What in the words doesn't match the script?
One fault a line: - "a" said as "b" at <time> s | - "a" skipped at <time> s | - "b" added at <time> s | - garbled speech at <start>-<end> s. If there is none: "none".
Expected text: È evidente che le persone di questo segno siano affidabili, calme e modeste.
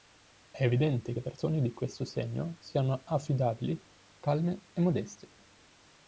- "che" skipped at 1.1 s